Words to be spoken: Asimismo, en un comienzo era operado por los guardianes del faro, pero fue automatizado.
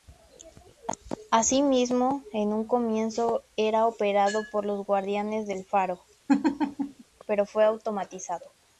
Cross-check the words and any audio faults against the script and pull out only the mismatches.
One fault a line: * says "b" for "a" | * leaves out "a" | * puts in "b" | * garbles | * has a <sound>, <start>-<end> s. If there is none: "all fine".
* has a laugh, 6.3-7.0 s